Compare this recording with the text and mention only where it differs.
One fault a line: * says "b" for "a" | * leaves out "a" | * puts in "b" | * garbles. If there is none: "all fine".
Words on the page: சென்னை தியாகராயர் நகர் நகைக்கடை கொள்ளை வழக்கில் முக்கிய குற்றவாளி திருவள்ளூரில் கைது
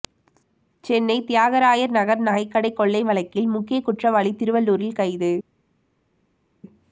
all fine